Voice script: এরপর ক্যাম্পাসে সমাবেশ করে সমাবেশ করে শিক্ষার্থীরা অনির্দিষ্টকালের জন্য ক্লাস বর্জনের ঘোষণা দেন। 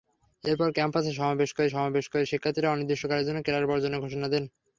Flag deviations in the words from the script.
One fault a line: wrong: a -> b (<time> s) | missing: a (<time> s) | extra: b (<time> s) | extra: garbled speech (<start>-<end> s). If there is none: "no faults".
no faults